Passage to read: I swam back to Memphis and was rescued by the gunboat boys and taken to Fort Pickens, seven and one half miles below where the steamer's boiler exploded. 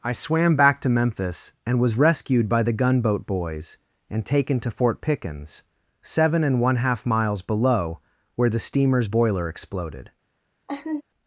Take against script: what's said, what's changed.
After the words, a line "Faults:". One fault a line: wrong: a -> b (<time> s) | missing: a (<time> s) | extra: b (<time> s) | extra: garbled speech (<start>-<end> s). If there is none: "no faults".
I swam back to Memphis and was rescued by the gunboat boys and taken to Fort Pickens, seven and one half miles below where the steamer's boiler exploded.
Faults:
no faults